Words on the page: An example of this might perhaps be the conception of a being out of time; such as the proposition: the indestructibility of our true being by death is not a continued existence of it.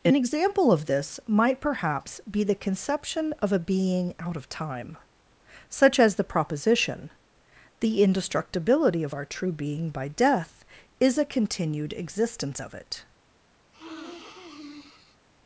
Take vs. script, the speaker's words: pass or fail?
fail